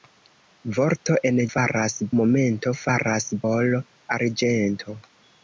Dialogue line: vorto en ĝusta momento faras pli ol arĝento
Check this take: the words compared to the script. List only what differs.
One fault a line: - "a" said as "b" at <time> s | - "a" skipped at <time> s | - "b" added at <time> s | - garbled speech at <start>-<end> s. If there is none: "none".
- "ĝusta" said as "faras" at 1.5 s
- "pli" skipped at 3.3 s